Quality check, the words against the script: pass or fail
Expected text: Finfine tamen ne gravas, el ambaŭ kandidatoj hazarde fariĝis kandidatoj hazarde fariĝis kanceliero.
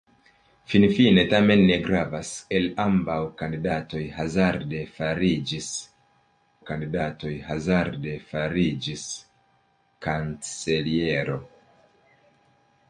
pass